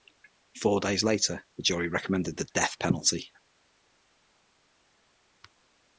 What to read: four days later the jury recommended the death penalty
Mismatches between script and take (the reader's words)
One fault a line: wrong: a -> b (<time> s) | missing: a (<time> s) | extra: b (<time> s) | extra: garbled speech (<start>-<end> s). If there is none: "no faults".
no faults